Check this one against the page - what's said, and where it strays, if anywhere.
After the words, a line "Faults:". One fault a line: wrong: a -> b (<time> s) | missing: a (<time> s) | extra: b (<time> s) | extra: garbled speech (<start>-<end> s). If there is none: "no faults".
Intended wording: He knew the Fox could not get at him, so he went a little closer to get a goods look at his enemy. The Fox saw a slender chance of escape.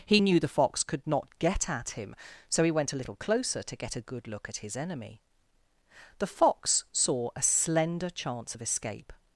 He knew the Fox could not get at him, so he went a little closer to get a good look at his enemy. The Fox saw a slender chance of escape.
Faults:
wrong: goods -> good (4.0 s)